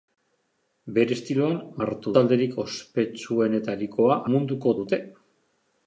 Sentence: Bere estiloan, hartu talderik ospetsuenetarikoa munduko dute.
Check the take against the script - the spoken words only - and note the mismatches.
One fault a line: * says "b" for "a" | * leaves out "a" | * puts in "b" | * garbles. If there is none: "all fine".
all fine